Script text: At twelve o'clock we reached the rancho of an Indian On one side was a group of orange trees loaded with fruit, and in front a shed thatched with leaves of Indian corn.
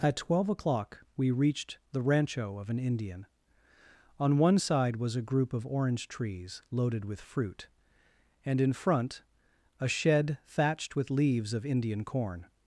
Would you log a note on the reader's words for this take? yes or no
no